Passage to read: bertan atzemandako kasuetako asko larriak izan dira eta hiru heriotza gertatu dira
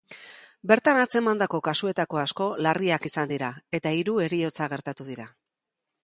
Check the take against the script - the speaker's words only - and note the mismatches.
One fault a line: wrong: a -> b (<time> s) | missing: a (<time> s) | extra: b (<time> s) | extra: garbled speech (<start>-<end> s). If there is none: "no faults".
no faults